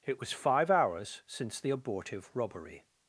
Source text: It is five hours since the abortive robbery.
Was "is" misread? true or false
true